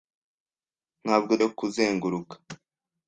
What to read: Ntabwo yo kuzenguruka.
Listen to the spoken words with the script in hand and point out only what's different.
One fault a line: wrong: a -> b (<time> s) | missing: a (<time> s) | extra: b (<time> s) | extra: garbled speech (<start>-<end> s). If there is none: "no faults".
no faults